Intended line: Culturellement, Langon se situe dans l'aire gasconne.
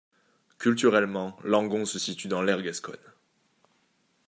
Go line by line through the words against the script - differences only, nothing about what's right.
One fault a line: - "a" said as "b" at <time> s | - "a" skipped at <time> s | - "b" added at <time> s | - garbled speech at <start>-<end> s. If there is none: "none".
none